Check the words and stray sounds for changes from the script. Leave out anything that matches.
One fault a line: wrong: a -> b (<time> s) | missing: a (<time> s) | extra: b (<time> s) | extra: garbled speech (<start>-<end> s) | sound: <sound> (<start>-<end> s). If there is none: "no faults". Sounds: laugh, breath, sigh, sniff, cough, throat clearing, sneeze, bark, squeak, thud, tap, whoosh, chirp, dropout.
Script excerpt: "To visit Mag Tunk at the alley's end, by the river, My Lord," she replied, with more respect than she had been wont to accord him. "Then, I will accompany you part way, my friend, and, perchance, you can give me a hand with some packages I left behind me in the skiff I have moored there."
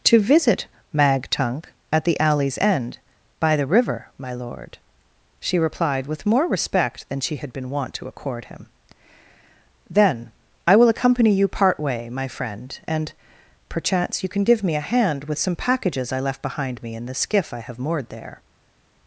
no faults